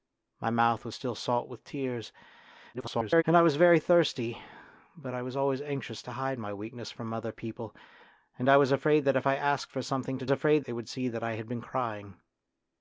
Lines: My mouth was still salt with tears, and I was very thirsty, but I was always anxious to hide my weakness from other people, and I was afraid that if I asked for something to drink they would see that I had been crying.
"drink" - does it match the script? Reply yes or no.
no